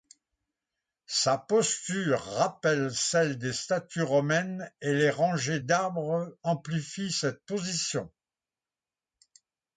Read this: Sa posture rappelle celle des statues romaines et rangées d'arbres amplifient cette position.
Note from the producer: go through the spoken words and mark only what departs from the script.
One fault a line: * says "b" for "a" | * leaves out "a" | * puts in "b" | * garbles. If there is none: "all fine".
* puts in "les"